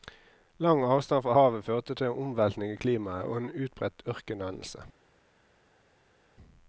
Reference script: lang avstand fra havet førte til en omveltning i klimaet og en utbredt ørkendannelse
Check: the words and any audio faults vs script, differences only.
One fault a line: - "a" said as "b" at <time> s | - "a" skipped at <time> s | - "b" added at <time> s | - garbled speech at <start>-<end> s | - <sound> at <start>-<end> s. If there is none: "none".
none